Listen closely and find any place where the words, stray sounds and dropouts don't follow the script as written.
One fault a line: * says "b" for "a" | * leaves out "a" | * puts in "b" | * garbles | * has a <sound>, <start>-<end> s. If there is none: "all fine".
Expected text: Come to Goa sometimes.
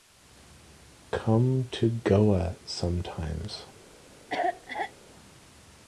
* has a cough, 4.3-4.9 s